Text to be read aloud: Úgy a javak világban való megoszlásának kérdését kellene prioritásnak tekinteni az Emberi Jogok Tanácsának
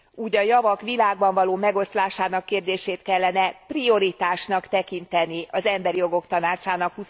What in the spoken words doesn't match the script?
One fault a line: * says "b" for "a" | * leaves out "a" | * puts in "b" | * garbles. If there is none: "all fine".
all fine